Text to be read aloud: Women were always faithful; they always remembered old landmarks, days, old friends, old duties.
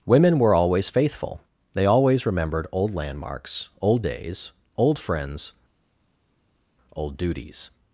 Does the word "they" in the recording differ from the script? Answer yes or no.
no